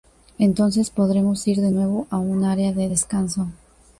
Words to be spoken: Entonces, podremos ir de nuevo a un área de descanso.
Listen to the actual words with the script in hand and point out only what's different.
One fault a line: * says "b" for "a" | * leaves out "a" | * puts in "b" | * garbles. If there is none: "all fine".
all fine